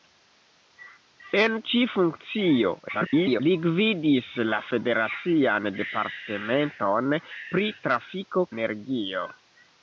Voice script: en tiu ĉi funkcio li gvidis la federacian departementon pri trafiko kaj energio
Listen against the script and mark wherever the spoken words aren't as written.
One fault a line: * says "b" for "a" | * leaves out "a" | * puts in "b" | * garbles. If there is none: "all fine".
* leaves out "tiu"
* garbles
* leaves out "kaj"